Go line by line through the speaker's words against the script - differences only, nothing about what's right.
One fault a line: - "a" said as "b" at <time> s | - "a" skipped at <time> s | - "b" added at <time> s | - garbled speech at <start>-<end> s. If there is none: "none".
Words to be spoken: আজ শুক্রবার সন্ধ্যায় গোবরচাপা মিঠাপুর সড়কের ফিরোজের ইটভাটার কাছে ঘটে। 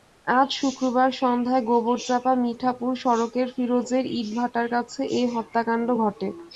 - "এ হত্যাকাণ্ড" added at 5.1 s